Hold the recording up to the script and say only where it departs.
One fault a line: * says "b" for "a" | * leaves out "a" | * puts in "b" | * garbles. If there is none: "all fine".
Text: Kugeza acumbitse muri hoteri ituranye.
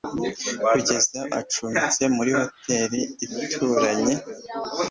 all fine